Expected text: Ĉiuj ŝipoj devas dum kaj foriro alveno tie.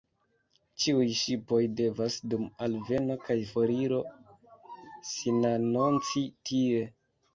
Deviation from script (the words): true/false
true